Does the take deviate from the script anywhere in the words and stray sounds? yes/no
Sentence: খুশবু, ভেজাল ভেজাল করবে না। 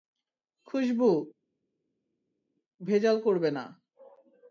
yes